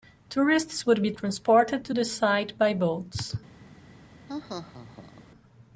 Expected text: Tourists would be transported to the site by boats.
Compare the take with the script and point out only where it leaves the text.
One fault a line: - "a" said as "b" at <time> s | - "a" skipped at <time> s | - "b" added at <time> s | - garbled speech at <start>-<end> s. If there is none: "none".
none